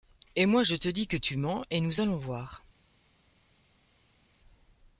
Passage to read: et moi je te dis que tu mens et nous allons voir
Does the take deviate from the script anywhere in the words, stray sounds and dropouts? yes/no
no